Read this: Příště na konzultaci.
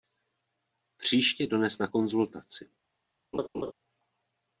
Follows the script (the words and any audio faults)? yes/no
no